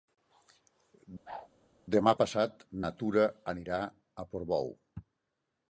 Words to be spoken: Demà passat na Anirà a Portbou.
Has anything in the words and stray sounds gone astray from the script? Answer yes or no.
yes